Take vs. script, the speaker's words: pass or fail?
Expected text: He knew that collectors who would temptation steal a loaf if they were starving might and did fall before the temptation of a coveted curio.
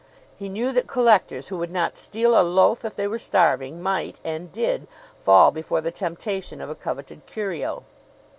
fail